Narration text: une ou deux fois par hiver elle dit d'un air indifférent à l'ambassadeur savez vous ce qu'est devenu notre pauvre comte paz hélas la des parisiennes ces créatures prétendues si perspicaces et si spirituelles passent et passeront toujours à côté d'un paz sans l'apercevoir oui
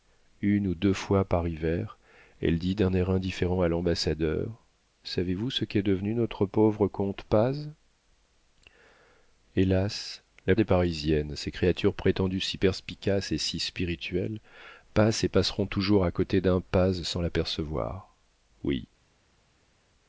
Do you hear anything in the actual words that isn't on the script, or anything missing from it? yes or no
no